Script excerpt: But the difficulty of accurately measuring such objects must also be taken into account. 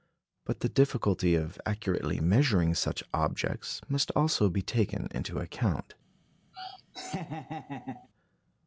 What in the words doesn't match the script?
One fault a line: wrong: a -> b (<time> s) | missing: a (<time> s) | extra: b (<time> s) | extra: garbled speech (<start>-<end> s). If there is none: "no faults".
no faults